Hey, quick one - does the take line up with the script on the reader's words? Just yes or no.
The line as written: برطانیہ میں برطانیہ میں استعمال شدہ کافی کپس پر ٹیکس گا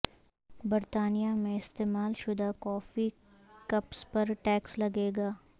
no